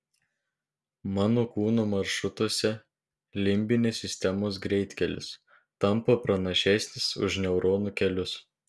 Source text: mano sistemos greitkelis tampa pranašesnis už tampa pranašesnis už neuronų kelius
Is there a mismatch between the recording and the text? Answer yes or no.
yes